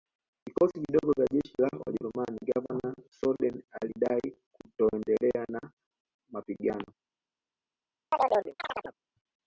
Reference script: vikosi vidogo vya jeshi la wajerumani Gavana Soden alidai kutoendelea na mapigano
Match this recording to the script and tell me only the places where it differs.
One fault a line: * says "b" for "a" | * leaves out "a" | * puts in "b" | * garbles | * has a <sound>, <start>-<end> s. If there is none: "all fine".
* has a chirp, 8.1-9.0 s